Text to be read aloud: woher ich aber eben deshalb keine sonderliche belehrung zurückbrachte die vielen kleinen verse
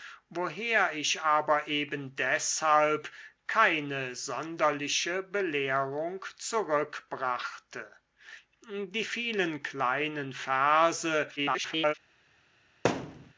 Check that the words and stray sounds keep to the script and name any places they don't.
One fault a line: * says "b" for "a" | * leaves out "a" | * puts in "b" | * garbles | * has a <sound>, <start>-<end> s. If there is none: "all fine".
* garbles
* has a thud, 12.8-13.3 s